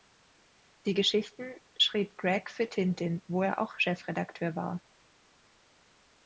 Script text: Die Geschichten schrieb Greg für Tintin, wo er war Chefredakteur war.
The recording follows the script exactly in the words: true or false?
false